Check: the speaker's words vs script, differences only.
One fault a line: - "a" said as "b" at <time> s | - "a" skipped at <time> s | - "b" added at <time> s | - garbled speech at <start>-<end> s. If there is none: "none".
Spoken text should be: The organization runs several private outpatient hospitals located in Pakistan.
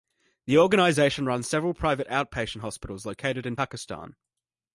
none